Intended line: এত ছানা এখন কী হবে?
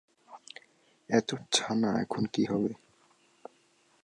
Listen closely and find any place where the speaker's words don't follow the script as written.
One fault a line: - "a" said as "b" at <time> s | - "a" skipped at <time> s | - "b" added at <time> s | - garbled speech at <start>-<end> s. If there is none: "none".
none